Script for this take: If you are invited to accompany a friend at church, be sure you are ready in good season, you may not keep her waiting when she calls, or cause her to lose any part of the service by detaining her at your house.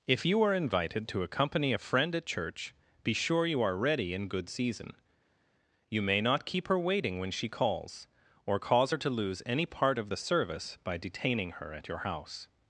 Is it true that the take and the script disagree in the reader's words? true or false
false